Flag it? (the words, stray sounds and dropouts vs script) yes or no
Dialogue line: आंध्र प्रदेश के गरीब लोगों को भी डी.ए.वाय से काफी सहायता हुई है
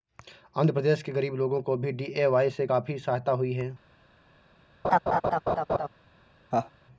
yes